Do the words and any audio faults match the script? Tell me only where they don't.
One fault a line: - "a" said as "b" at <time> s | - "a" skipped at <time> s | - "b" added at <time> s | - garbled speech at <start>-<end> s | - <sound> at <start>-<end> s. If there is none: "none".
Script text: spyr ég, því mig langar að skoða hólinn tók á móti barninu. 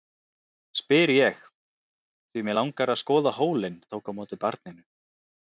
none